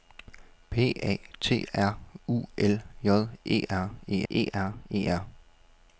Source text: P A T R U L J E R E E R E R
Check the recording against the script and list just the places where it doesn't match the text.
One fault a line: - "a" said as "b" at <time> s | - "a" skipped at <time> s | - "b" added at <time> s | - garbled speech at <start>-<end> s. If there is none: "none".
none